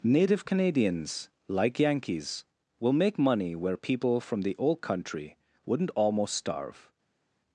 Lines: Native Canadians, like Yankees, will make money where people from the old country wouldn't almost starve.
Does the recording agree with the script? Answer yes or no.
yes